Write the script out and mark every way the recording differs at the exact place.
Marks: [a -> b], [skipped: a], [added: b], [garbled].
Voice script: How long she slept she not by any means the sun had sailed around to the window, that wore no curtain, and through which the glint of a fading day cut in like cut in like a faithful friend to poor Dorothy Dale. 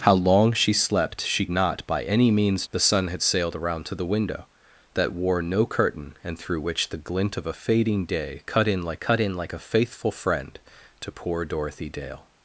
How long she slept she not by any means the sun had sailed around to the window, that wore no curtain, and through which the glint of a fading day cut in like cut in like a faithful friend to poor Dorothy Dale.